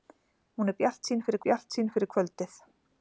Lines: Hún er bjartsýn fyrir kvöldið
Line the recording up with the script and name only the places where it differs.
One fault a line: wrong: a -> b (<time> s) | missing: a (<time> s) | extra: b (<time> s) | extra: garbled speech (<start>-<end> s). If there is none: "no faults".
extra: bjartsýn fyrir (1.4 s)